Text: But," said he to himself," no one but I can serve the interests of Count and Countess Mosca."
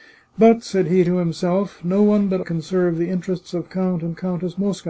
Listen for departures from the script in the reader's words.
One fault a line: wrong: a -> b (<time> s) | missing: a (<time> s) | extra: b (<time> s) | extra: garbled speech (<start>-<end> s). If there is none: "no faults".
missing: I (2.4 s)